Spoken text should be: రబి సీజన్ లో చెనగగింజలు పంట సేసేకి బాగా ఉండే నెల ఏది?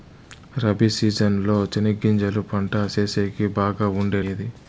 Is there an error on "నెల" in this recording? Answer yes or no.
yes